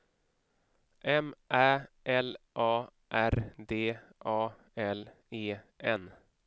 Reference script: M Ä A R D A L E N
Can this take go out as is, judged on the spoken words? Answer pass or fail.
fail